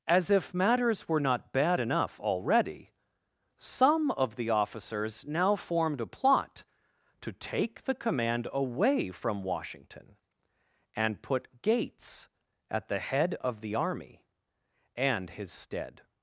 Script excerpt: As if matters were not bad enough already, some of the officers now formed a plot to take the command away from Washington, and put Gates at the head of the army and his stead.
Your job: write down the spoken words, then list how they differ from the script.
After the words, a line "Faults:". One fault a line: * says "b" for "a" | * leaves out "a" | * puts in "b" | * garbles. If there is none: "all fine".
As if matters were not bad enough already, some of the officers now formed a plot to take the command away from Washington, and put Gates at the head of the army and his stead.
Faults:
all fine